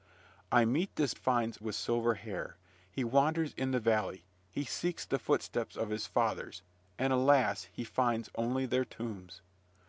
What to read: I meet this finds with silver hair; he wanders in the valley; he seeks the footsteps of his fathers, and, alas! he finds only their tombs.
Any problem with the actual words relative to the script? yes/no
no